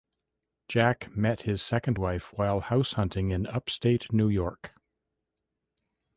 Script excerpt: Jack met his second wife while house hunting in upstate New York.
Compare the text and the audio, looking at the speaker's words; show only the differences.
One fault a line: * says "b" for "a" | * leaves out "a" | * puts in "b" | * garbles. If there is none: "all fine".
all fine